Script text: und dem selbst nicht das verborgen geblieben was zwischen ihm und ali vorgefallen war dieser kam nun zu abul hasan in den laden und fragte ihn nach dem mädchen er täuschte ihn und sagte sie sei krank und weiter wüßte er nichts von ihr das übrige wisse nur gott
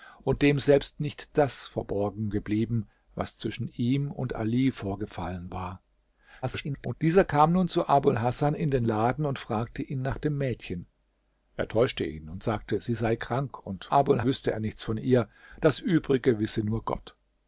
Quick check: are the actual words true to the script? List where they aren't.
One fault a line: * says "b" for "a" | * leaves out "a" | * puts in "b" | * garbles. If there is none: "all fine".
* garbles
* says "abul" for "weiter"